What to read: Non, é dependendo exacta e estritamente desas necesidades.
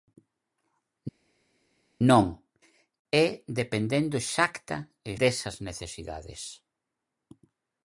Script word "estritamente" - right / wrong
wrong